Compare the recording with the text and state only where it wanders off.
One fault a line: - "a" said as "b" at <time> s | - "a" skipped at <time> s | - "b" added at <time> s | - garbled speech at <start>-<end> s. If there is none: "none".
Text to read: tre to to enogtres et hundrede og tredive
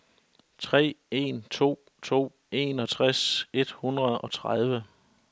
- "en" added at 1.1 s